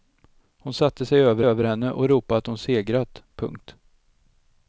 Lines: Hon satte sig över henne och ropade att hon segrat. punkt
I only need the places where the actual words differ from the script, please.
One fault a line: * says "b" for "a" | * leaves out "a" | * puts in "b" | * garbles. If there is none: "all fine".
* puts in "över"